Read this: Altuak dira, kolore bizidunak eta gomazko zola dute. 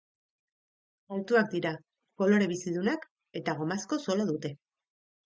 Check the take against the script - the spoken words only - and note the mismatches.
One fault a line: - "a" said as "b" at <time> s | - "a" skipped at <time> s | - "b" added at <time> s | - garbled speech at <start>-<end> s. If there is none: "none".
none